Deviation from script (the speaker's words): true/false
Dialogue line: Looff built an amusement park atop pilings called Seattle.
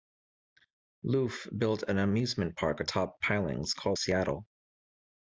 false